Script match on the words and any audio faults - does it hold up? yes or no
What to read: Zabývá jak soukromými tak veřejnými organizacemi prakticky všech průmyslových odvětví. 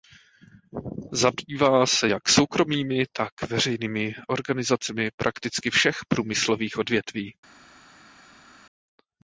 no